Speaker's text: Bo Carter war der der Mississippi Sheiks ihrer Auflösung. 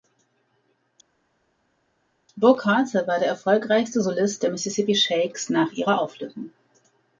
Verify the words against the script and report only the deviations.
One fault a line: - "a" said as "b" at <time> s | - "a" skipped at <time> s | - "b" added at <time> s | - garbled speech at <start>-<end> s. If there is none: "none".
- "erfolgreichste Solist" added at 3.3 s
- "nach" added at 5.5 s